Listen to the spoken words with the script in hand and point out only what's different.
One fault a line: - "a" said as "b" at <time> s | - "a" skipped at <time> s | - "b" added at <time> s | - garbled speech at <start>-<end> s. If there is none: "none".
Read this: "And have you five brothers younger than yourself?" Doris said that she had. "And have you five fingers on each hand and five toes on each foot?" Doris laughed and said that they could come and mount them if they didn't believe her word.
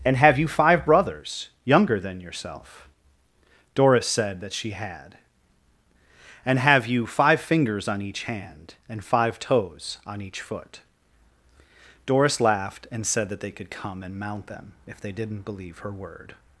none